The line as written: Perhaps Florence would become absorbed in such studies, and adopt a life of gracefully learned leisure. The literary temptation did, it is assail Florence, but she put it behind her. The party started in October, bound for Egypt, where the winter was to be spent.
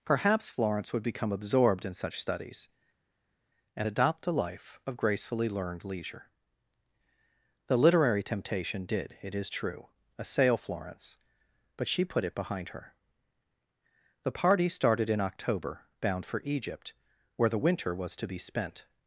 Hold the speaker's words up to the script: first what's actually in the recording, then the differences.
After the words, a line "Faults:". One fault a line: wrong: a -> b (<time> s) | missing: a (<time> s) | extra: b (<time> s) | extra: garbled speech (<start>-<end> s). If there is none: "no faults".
Perhaps Florence would become absorbed in such studies, and adopt a life of gracefully learned leisure. The literary temptation did, it is true, assail Florence, but she put it behind her. The party started in October, bound for Egypt, where the winter was to be spent.
Faults:
extra: true (9.5 s)